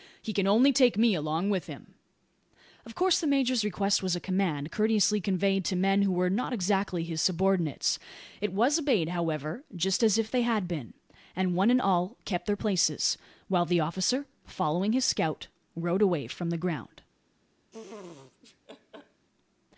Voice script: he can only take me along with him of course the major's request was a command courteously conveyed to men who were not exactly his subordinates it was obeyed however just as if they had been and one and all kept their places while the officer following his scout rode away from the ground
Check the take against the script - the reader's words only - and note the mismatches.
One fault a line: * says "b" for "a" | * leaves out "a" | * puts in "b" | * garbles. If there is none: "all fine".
all fine